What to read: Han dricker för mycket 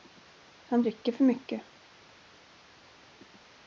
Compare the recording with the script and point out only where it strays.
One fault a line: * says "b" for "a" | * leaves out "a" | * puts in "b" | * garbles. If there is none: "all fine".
all fine